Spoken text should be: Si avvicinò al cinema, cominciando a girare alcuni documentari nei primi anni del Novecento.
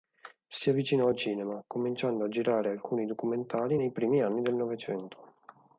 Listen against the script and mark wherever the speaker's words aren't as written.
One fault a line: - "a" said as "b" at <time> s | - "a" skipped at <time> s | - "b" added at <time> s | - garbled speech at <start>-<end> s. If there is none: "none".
none